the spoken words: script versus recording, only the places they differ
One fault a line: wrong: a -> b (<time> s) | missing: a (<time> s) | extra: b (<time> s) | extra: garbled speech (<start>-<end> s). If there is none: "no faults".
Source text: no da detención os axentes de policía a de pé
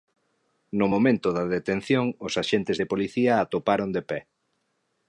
extra: momento (0.9 s)
extra: atoparon (3.4 s)